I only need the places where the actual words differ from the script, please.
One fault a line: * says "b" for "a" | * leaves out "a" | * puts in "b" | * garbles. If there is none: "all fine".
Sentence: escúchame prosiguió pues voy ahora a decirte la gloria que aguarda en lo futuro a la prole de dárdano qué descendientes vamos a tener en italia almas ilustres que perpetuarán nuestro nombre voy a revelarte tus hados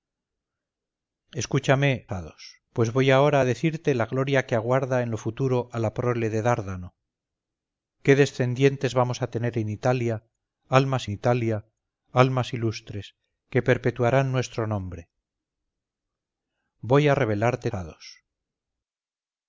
* says "hados" for "prosiguió"
* puts in "italia almas"
* leaves out "tus"